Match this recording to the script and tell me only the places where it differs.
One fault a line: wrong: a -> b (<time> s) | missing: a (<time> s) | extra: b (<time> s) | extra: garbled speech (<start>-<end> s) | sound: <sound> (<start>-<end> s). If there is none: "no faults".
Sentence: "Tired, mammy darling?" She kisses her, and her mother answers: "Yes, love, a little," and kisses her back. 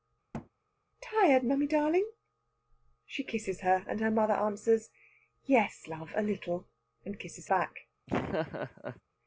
sound: thud (0.3-0.5 s)
missing: her (7.5 s)
sound: laugh (8.1-9.0 s)